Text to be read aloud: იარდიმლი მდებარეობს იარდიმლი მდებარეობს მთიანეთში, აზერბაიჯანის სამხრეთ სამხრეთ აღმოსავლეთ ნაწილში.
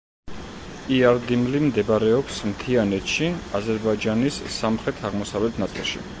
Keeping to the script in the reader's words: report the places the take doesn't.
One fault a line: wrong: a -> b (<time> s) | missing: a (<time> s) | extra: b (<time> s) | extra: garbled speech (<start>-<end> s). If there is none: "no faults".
missing: იარდიმლი მდებარეობს (2.4 s)
missing: სამხრეთ (5.0 s)